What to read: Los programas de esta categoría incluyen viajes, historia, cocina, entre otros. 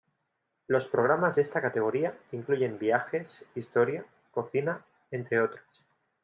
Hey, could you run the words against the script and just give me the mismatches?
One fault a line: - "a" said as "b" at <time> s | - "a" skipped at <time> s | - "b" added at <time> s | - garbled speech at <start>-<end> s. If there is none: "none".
none